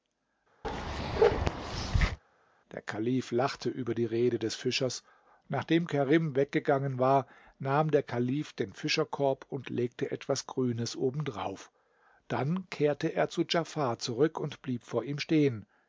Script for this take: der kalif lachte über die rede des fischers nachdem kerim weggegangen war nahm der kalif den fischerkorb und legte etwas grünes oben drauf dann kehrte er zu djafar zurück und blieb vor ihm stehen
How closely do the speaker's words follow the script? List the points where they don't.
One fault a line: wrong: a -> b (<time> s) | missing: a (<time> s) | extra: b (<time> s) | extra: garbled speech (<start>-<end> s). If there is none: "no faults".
no faults